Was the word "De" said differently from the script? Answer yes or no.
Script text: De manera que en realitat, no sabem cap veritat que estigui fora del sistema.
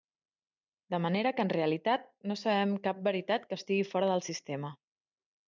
no